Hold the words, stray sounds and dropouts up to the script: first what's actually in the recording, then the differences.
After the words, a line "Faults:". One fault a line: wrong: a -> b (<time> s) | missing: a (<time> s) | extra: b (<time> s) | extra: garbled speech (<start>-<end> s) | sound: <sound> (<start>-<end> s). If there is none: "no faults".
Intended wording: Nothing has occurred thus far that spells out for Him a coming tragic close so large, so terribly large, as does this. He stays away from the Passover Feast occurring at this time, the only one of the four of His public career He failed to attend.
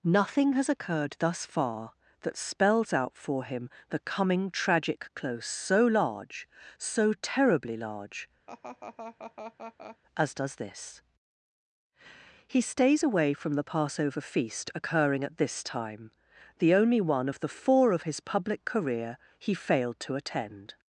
Nothing has occurred thus far that spells out for Him the coming tragic close so large, so terribly large, as does this. He stays away from the Passover Feast occurring at this time, the only one of the four of His public career He failed to attend.
Faults:
wrong: a -> the (3.9 s)
sound: laugh (8.5-10.0 s)